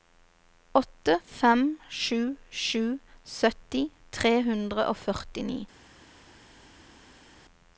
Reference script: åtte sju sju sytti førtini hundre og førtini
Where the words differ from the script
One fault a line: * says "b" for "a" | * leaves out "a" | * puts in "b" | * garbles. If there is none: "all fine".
* puts in "fem"
* says "tre" for "førtini"